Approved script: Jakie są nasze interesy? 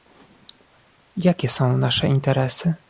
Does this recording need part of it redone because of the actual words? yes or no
no